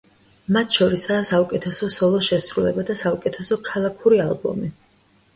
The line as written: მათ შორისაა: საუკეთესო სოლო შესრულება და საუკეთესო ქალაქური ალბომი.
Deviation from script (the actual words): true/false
false